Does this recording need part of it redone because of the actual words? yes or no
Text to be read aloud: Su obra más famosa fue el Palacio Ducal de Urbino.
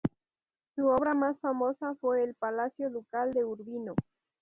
no